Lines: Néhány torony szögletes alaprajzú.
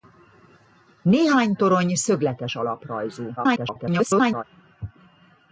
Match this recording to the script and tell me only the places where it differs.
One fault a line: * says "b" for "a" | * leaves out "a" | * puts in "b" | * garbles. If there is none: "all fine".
* garbles